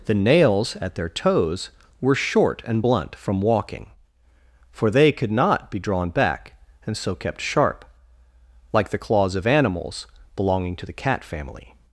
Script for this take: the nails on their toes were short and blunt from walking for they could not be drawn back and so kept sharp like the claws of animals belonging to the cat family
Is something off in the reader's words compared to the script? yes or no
yes